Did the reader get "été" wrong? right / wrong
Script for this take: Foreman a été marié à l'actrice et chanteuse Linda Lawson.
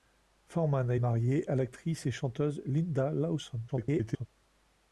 wrong